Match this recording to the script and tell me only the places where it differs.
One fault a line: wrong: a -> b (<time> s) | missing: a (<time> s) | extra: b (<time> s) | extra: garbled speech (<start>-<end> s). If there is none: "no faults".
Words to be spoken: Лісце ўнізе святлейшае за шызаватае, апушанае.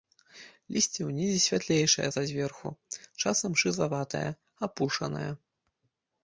extra: зверху часам (2.3 s)